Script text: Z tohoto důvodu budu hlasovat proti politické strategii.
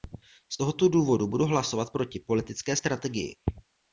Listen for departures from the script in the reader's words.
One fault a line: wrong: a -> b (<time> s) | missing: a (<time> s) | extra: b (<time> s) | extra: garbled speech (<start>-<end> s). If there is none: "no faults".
no faults